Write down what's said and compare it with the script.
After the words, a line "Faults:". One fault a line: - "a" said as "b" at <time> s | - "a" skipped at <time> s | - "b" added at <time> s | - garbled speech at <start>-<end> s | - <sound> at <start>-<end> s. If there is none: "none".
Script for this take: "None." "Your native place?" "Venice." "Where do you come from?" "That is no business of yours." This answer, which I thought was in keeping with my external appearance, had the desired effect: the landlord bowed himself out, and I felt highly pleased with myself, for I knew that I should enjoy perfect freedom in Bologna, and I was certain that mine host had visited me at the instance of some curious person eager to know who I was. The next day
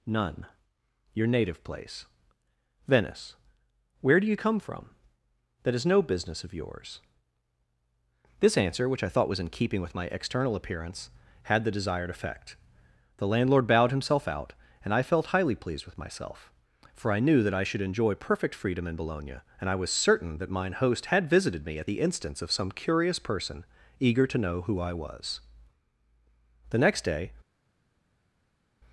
"None." "Your native place?" "Venice." "Where do you come from?" "That is no business of yours." This answer, which I thought was in keeping with my external appearance, had the desired effect: the landlord bowed himself out, and I felt highly pleased with myself, for I knew that I should enjoy perfect freedom in Bologna, and I was certain that mine host had visited me at the instance of some curious person eager to know who I was. The next day
Faults:
none